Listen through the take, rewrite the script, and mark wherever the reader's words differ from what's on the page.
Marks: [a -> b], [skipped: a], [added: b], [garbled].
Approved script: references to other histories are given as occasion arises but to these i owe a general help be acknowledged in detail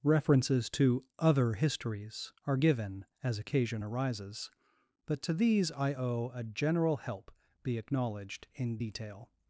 references to other histories are given as occasion arises but to these i owe a general help be acknowledged in detail